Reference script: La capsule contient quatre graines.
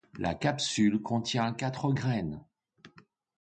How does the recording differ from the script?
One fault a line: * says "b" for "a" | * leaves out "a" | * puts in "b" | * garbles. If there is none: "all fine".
all fine